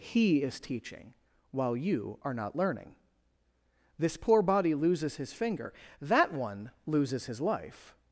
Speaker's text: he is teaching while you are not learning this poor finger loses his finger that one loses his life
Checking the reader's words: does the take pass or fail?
fail